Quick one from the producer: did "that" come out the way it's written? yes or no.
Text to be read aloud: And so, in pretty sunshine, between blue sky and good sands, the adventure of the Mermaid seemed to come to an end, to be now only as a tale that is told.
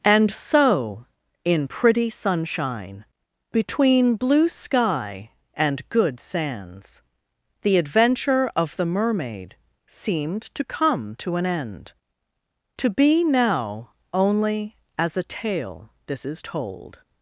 no